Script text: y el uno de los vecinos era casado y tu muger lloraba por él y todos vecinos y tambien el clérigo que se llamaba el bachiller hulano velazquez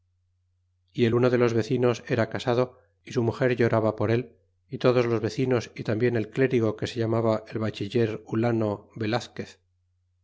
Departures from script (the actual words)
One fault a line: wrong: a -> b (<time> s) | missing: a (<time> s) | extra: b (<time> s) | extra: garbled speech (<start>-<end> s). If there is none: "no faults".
wrong: tu -> su (3.1 s)
extra: los (5.1 s)